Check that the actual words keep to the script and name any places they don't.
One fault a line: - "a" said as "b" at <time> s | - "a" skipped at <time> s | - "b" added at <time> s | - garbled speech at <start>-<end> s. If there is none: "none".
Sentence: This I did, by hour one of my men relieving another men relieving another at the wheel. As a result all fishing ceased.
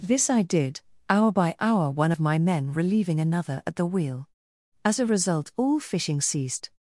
- "hour" added at 1.1 s
- "men relieving another" skipped at 3.6 s